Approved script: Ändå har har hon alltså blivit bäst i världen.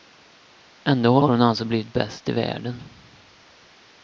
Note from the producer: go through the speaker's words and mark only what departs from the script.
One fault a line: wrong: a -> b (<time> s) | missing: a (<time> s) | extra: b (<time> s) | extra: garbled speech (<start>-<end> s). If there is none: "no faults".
no faults